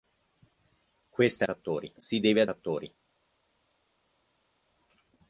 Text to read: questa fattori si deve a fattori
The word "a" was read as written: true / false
true